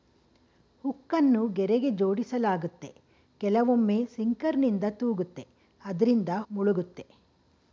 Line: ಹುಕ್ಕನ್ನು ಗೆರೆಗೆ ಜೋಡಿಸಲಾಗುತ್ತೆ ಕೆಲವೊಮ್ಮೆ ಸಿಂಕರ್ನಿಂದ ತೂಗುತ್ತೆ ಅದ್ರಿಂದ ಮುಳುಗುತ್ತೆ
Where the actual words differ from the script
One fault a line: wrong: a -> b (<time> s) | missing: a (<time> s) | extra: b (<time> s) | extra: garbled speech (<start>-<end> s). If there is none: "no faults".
no faults